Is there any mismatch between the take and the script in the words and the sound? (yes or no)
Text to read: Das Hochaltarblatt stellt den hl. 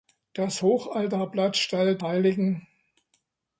yes